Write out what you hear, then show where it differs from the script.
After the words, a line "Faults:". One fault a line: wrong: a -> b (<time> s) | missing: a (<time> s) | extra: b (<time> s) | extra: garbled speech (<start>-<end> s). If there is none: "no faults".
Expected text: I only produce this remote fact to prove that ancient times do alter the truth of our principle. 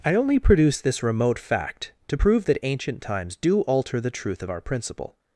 I only produce this remote fact to prove that ancient times do alter the truth of our principle.
Faults:
no faults